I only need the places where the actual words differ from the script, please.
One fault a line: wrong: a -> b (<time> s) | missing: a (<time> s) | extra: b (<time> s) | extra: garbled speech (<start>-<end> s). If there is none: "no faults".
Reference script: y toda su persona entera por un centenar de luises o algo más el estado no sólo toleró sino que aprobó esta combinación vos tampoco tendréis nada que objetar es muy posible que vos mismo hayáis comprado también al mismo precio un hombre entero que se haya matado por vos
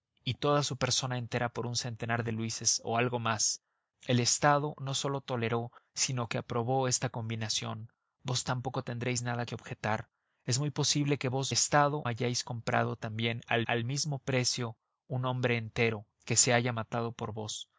wrong: mismo -> estado (11.5 s)
extra: al (13.6 s)